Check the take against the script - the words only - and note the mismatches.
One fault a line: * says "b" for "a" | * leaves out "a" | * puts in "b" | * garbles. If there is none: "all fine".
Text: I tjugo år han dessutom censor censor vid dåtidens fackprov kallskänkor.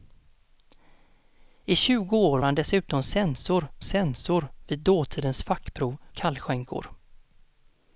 all fine